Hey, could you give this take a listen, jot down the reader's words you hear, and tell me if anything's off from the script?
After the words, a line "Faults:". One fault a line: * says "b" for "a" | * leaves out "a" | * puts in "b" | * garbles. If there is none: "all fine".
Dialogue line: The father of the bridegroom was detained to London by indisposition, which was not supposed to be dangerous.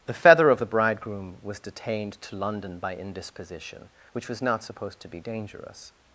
The feather of the bridegroom was detained to London by indisposition, which was not supposed to be dangerous.
Faults:
* says "feather" for "father"